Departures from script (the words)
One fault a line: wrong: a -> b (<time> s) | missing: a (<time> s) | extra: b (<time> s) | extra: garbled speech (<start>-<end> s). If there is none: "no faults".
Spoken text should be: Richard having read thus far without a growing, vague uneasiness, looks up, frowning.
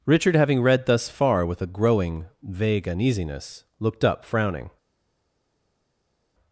wrong: without -> with (1.4 s)
wrong: looks -> looked (3.8 s)